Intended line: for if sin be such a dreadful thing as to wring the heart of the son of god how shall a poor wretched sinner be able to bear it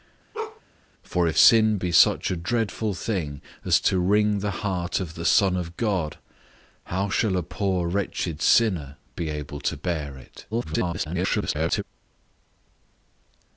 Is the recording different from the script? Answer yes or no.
yes